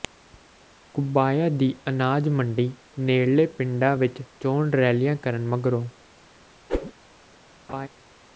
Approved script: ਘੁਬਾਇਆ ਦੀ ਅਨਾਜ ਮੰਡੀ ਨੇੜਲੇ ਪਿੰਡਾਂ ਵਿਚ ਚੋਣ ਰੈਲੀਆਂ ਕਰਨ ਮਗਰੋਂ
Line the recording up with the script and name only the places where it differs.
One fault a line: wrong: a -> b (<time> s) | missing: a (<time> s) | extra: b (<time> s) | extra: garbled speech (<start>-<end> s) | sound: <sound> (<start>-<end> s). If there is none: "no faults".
sound: whoosh (6.7-6.9 s)
sound: laugh (7.7-7.9 s)